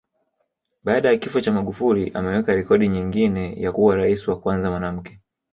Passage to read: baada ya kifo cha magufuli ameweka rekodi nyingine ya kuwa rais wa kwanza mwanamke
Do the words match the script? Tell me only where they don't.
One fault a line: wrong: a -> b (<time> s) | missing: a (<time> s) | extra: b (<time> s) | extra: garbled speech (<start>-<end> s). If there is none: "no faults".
no faults